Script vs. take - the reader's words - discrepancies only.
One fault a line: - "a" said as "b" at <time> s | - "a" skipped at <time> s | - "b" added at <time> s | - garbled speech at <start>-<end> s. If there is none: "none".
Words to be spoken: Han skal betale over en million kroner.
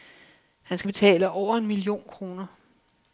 none